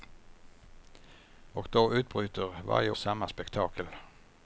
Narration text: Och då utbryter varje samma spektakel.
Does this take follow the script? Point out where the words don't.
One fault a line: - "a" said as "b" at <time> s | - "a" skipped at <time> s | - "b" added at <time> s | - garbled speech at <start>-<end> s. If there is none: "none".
none